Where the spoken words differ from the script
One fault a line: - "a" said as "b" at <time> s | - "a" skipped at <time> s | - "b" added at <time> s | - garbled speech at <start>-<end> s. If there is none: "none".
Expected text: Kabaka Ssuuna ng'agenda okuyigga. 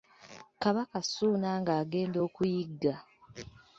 none